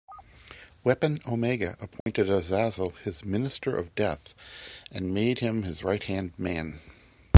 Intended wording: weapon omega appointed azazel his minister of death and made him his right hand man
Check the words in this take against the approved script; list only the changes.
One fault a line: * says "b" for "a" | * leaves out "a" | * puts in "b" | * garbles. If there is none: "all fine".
all fine